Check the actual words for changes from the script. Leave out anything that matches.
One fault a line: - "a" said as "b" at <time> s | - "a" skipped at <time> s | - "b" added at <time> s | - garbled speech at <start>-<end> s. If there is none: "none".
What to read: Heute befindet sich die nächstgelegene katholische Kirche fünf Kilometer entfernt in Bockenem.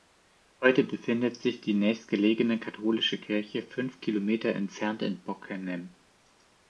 none